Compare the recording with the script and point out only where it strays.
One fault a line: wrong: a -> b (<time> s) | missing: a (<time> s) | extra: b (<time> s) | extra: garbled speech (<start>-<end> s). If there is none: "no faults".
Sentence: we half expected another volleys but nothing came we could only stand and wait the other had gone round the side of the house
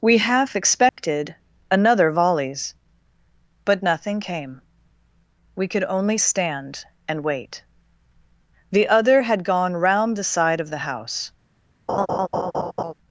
no faults